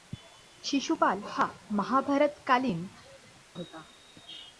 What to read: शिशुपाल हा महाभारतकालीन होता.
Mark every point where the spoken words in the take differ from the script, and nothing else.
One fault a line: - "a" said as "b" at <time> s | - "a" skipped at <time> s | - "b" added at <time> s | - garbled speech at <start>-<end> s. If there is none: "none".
none